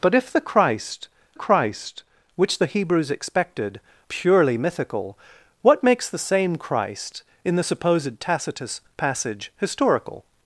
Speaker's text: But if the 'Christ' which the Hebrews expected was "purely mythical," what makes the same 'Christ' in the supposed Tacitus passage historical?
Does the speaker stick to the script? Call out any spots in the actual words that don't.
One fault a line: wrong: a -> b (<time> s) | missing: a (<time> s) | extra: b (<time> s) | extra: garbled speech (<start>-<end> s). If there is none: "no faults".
extra: christ (1.3 s)
missing: was (3.8 s)